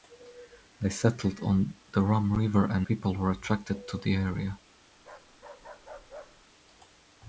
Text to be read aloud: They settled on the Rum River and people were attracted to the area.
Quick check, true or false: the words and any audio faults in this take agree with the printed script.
false